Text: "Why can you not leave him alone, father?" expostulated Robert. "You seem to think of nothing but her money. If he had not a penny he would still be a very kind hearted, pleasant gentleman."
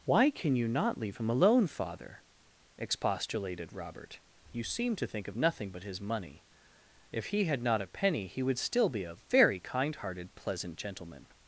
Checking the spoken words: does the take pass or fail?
fail